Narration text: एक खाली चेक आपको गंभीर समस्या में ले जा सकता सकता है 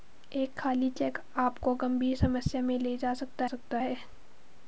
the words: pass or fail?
pass